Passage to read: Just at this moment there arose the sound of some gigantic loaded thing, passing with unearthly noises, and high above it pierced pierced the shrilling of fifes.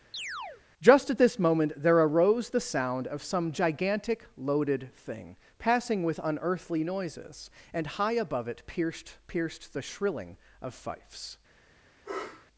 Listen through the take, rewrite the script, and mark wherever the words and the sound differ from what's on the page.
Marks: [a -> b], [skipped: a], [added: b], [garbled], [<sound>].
[chirp] Just at this moment there arose the sound of some gigantic loaded thing, passing with unearthly noises, and high above it pierced pierced the shrilling of fifes. [sniff]